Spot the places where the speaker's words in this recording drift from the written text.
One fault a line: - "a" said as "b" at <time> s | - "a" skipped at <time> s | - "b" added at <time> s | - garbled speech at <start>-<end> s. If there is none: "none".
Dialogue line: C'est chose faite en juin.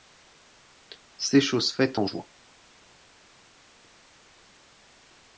none